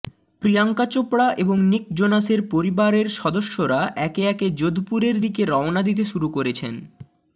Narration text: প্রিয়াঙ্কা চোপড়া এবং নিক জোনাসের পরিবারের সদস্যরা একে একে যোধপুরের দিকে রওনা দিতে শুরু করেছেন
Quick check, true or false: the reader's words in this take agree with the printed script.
true